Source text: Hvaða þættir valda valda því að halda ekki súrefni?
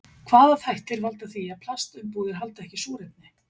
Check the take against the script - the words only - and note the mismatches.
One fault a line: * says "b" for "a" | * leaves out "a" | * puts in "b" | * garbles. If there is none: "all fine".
* leaves out "valda"
* puts in "plastumbúðir"